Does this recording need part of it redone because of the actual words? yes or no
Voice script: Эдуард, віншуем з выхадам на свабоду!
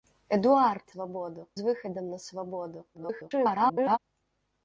yes